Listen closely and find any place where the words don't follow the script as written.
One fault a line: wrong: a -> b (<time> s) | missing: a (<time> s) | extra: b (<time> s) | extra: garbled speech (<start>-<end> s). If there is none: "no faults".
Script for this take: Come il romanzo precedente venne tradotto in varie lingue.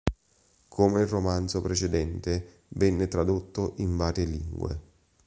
no faults